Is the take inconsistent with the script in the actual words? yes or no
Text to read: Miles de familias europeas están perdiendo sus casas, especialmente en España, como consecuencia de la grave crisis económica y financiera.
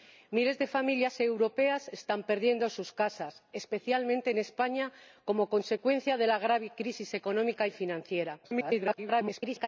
yes